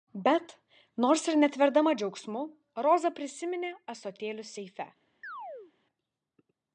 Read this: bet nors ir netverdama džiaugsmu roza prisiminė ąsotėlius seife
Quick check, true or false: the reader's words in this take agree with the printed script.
true